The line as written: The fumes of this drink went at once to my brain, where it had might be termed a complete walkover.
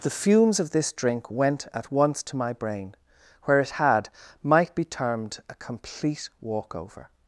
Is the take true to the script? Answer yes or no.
yes